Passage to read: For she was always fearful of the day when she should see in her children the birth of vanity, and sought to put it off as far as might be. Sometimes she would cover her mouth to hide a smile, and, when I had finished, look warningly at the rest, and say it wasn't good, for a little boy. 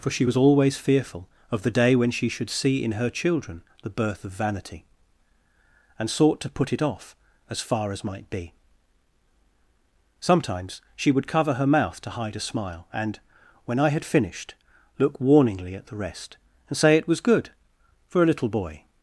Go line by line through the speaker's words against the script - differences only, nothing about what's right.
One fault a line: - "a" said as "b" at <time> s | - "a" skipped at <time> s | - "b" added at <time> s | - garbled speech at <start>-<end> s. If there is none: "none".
- "wasn't" said as "was" at 17.1 s